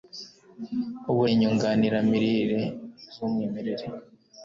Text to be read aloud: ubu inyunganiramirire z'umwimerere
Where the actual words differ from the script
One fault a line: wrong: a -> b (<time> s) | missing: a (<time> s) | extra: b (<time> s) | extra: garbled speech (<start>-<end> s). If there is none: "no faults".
no faults